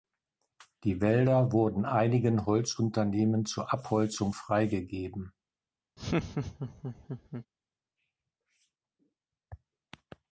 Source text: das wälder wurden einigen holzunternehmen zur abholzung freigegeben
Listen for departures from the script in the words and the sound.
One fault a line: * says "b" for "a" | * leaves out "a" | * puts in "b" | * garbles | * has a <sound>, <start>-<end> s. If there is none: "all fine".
* says "die" for "das"
* has a laugh, 6.0-7.5 s